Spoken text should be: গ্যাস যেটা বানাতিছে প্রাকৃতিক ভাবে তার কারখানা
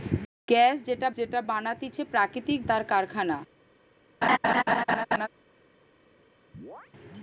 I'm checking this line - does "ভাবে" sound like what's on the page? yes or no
no